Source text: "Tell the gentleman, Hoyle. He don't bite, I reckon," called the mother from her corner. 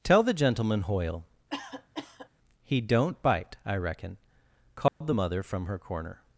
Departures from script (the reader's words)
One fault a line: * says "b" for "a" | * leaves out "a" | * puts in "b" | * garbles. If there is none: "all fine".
all fine